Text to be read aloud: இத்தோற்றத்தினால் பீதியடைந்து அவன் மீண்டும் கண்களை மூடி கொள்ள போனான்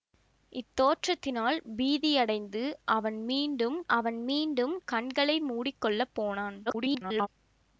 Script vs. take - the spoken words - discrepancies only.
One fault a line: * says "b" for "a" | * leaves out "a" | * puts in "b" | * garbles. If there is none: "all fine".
* puts in "அவன் மீண்டும்"
* garbles